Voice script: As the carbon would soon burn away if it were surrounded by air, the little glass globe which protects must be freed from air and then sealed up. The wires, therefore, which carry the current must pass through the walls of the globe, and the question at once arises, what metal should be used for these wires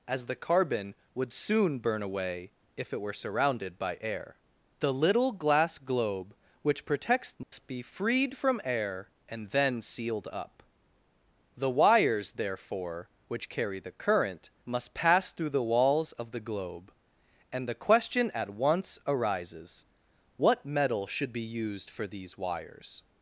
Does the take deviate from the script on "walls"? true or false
false